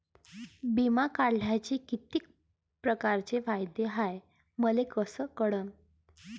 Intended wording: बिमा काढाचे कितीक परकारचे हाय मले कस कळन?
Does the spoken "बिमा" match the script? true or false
true